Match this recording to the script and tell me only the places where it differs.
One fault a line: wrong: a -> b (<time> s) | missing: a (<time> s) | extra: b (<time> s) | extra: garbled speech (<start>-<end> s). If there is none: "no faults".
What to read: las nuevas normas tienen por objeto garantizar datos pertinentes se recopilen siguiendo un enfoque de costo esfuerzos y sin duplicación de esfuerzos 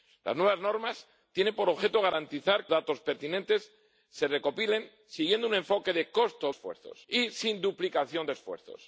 no faults